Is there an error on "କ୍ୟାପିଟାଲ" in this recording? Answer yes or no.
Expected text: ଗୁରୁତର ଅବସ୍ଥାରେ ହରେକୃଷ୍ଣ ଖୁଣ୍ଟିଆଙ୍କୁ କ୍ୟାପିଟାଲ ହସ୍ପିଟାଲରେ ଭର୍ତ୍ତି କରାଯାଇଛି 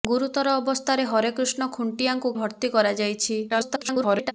yes